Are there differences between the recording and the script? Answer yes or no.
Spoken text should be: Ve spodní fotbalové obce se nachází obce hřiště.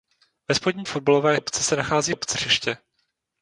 no